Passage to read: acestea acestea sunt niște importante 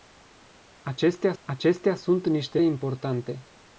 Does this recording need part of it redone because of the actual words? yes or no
no